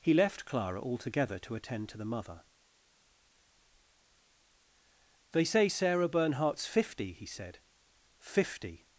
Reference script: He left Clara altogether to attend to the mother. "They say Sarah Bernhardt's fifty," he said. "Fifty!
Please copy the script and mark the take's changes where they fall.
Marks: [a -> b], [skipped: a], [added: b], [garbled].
He left Clara altogether to attend to the mother. "They say Sarah Bernhardt's fifty," he said. "Fifty!